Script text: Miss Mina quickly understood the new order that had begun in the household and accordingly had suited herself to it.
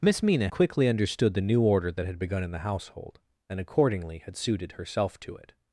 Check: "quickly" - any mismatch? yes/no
no